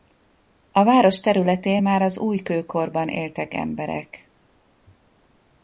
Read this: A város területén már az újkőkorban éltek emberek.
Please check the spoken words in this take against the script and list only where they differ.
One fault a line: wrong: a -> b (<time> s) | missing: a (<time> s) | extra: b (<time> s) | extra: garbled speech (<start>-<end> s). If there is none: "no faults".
no faults